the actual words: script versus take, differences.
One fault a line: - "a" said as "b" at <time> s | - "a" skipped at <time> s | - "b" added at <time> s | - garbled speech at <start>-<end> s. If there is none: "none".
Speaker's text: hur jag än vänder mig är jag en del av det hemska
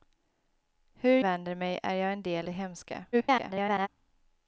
- "jag än" skipped at 1.2 s
- "av" skipped at 2.5 s
- garbled speech at 3.1-3.9 s